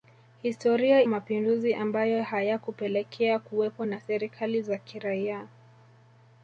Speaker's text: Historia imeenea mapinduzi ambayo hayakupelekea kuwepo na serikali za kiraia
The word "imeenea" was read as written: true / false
false